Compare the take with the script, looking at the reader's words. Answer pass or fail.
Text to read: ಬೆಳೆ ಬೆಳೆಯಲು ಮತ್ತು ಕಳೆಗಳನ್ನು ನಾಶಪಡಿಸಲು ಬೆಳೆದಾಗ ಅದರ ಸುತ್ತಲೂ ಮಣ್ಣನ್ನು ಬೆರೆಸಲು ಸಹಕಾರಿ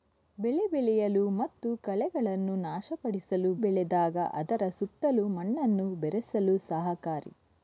pass